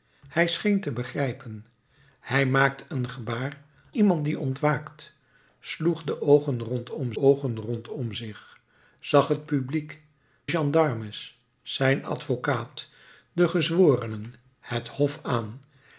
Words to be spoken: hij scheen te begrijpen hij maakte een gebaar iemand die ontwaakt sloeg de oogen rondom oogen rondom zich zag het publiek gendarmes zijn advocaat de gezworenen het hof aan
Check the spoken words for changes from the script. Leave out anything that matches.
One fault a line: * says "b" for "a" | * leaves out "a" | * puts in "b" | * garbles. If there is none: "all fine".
all fine